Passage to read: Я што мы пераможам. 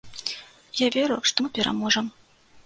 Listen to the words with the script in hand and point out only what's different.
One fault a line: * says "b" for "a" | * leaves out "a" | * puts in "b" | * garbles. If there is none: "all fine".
* puts in "веру"